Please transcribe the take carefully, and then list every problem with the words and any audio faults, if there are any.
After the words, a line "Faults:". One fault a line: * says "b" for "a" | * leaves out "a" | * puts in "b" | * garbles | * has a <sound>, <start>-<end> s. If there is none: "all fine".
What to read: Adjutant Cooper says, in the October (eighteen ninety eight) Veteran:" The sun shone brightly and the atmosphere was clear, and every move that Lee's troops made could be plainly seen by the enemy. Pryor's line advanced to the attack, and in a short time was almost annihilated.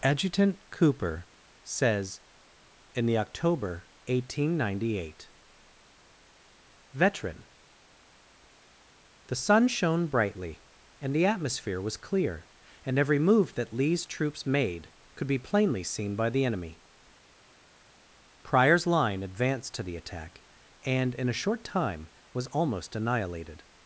Adjutant Cooper says, in the October (eighteen ninety eight) Veteran:" The sun shone brightly and the atmosphere was clear, and every move that Lee's troops made could be plainly seen by the enemy. Pryor's line advanced to the attack, and in a short time was almost annihilated.
Faults:
all fine